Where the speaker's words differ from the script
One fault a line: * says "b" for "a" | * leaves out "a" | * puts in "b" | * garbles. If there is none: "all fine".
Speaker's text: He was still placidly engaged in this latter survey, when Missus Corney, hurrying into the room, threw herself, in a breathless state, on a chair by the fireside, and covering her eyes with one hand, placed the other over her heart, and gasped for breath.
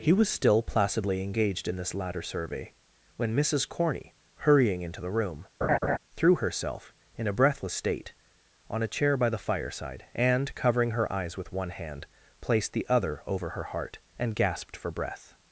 all fine